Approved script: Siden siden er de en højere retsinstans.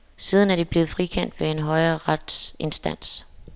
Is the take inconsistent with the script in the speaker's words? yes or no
yes